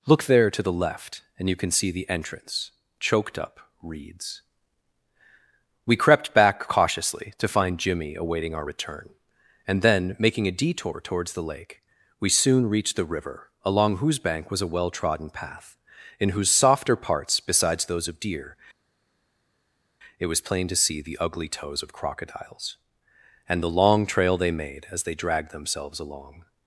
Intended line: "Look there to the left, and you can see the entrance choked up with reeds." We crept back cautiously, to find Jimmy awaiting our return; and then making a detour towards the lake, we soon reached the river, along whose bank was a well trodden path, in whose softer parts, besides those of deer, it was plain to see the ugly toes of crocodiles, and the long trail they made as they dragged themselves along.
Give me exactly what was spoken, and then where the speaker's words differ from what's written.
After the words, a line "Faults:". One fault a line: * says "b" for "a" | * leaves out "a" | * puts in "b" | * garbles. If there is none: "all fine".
"Look there to the left, and you can see the entrance choked up reeds." We crept back cautiously, to find Jimmy awaiting our return; and then making a detour towards the lake, we soon reached the river, along whose bank was a well trodden path, in whose softer parts, besides those of deer, it was plain to see the ugly toes of crocodiles, and the long trail they made as they dragged themselves along.
Faults:
* leaves out "with"